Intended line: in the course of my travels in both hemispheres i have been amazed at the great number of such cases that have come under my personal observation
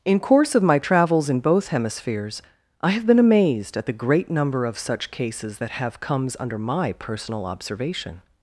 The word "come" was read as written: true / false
false